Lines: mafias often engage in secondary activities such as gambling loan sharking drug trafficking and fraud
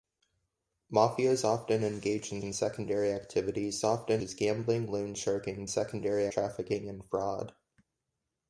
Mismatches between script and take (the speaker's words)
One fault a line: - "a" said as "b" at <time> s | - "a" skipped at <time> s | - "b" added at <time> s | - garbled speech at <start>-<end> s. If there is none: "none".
- "in" added at 2.4 s
- "such" said as "often" at 3.8 s
- "drug" said as "secondary" at 5.7 s